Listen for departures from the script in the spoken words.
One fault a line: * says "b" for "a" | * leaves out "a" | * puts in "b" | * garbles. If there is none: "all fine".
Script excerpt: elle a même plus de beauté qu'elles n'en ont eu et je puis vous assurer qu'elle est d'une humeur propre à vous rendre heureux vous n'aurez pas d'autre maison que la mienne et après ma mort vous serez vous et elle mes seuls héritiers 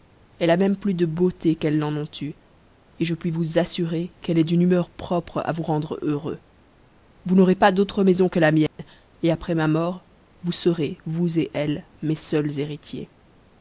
all fine